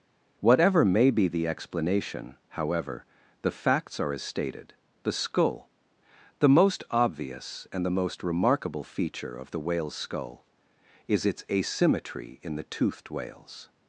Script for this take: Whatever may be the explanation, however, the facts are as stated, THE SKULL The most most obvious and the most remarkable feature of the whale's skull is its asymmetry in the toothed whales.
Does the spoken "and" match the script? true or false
true